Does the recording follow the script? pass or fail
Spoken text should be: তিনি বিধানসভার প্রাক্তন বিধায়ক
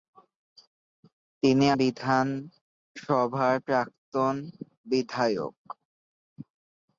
pass